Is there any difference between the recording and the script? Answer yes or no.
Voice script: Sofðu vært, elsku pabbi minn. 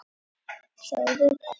yes